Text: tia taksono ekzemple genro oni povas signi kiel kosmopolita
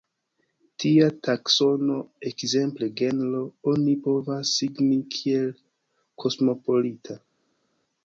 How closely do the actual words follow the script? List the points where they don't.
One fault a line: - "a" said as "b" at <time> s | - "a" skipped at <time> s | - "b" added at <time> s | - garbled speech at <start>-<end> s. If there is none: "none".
none